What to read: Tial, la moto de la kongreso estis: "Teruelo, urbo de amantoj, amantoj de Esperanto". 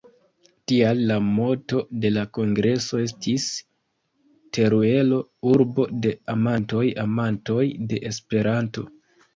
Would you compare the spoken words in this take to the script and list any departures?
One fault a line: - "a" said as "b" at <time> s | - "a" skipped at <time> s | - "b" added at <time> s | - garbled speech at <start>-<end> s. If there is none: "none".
none